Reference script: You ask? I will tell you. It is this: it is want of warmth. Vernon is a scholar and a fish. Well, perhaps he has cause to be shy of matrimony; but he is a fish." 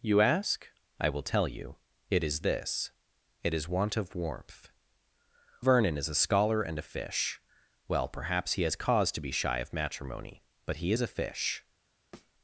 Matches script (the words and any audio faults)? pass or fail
fail